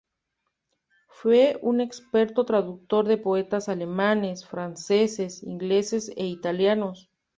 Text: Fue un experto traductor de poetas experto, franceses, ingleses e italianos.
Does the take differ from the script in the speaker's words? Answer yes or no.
yes